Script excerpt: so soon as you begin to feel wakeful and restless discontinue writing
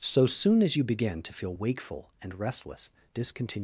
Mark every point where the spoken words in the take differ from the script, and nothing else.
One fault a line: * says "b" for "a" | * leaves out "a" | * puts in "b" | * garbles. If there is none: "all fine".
* leaves out "writing"